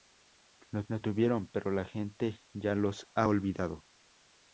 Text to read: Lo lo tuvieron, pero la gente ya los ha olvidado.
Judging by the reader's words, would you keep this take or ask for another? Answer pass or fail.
pass